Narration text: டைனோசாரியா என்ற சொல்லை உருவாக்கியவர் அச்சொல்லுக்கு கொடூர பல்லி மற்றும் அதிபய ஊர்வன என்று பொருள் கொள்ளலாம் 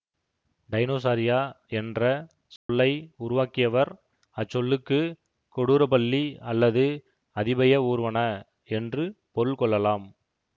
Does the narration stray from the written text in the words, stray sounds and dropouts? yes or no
yes